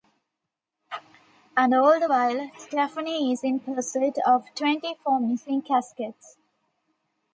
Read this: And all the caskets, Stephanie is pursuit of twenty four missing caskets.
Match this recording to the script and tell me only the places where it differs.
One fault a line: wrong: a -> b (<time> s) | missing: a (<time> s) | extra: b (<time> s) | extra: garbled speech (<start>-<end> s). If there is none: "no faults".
wrong: caskets -> while (2.1 s)
extra: in (3.4 s)